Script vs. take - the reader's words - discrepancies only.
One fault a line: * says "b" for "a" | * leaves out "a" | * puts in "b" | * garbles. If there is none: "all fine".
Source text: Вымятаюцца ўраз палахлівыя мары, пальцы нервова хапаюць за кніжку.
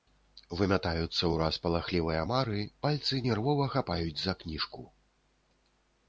all fine